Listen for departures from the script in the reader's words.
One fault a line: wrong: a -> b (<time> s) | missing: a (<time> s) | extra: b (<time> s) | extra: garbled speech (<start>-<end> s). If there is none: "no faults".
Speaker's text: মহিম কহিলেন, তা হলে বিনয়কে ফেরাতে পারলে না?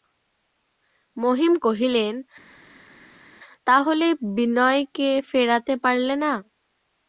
no faults